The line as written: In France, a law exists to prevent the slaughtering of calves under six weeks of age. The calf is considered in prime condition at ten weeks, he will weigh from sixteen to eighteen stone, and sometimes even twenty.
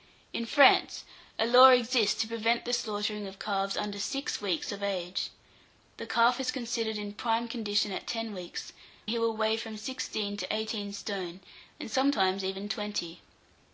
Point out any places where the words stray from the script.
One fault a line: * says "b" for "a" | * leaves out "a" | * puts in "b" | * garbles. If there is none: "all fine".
all fine